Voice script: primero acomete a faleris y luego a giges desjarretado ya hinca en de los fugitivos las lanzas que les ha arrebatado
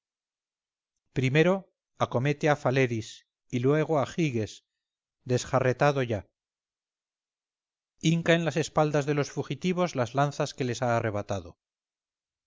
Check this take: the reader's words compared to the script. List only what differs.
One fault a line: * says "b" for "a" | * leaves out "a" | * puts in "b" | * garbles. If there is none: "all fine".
* puts in "las espaldas"